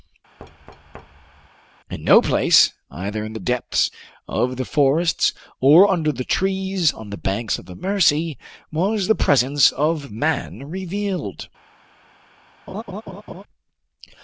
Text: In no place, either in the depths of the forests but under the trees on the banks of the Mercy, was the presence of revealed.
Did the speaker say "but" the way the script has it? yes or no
no